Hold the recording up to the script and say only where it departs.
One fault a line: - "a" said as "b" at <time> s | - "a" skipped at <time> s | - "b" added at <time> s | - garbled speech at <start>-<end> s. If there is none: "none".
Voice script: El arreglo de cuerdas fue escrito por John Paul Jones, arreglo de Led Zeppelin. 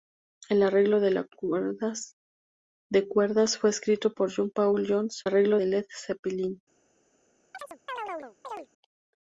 none